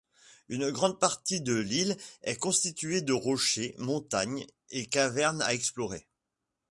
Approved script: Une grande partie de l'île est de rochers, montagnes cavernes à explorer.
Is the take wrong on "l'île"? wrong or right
right